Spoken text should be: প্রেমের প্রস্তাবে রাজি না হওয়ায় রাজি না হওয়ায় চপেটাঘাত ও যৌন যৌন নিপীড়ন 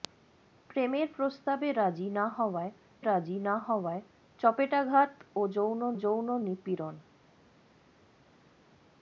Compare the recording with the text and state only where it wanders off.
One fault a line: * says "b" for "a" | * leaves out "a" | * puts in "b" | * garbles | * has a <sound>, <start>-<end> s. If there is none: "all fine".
all fine